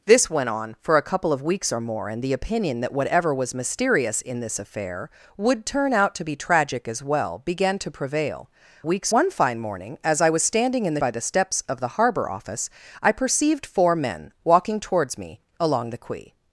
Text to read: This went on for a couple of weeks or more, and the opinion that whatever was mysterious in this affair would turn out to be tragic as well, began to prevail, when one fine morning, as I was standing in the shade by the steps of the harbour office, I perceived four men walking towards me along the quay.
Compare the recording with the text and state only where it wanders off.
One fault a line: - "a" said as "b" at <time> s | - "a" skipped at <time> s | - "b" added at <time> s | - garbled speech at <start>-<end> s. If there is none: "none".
- "when" said as "weeks" at 8.8 s
- "shade" skipped at 11.0 s